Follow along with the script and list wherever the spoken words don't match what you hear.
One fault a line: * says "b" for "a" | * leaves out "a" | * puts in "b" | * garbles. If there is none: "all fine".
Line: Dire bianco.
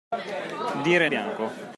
all fine